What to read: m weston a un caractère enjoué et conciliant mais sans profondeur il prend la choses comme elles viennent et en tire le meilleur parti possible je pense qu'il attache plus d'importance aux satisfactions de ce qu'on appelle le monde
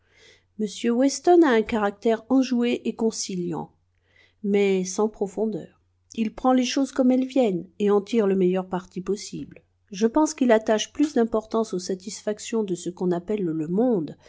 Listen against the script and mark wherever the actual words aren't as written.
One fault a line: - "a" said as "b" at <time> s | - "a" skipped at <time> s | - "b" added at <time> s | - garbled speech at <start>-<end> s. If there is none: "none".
- "la" said as "les" at 6.5 s